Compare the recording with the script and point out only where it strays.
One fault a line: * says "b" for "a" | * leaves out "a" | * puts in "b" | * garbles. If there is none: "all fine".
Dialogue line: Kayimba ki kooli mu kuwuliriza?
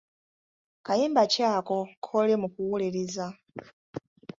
* puts in "ako"